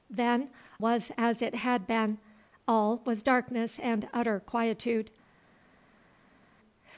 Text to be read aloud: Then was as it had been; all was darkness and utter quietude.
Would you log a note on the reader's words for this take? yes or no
no